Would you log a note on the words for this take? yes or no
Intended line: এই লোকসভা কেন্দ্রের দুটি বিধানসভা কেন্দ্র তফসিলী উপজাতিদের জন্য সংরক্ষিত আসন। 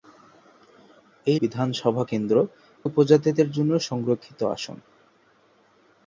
yes